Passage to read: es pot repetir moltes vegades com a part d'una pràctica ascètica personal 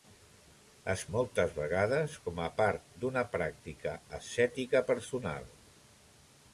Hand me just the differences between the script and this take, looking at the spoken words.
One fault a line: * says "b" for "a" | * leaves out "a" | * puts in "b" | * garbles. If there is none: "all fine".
* leaves out "pot repetir"